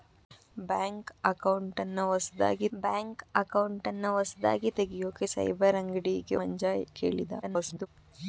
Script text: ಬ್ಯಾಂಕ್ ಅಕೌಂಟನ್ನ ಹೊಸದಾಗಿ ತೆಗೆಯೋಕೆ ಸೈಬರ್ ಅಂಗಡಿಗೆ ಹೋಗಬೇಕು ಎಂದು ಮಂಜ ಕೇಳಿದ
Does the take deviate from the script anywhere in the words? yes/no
yes